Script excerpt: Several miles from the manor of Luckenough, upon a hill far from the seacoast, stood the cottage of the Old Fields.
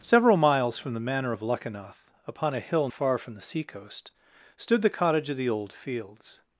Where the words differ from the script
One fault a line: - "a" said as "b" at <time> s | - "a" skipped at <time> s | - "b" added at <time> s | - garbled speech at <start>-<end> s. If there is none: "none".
none